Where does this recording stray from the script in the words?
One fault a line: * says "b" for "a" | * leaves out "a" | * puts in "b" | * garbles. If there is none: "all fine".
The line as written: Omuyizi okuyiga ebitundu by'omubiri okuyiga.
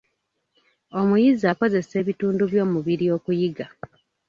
* says "akozesa" for "okuyiga"